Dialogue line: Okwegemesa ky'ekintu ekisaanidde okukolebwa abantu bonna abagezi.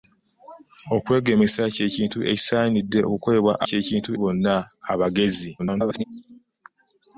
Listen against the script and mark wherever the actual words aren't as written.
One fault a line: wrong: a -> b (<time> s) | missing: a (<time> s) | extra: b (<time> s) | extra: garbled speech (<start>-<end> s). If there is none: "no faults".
wrong: abantu -> ky'ekintu (3.7 s)
extra: garbled speech (5.6-6.0 s)